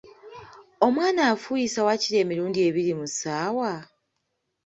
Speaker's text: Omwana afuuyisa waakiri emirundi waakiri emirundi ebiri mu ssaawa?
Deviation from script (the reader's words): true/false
true